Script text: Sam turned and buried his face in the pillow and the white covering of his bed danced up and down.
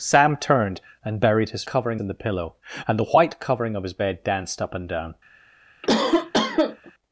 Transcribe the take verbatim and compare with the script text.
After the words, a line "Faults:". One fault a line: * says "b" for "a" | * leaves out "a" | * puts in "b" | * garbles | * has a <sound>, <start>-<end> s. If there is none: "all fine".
Sam turned and buried his covering in the pillow and the white covering of his bed danced up and down.
Faults:
* says "covering" for "face"
* has a cough, 5.8-6.9 s